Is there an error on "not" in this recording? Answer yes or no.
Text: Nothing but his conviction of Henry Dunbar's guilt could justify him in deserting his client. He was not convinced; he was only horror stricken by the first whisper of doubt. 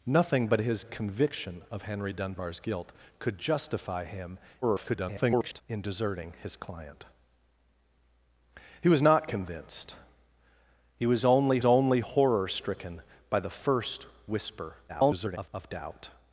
no